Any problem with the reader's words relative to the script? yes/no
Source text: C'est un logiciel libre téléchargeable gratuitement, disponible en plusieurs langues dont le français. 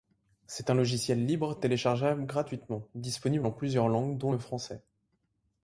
no